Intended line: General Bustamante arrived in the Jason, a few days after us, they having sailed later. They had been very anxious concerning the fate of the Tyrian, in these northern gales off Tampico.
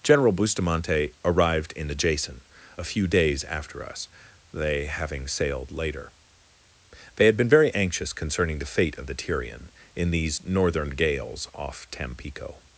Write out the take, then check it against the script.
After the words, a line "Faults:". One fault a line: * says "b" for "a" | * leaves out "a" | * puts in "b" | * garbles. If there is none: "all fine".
General Bustamante arrived in the Jason, a few days after us, they having sailed later. They had been very anxious concerning the fate of the Tyrian, in these northern gales off Tampico.
Faults:
all fine